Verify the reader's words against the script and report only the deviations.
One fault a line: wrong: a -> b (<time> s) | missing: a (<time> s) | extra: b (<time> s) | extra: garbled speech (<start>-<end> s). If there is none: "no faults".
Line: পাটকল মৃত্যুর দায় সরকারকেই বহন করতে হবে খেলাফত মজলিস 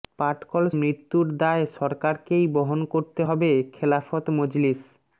no faults